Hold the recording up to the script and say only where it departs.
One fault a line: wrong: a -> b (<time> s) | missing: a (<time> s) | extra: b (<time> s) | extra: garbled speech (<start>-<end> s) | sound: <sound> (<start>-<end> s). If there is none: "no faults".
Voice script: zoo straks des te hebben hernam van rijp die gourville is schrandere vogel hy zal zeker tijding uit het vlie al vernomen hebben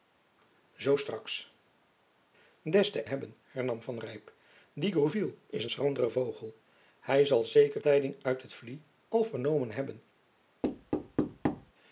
sound: thud (10.6-11.7 s)